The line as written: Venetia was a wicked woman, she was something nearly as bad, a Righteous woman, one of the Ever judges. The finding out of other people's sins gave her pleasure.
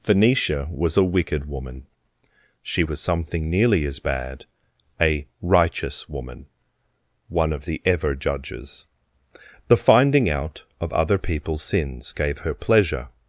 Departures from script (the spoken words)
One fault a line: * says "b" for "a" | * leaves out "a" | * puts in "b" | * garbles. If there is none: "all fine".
all fine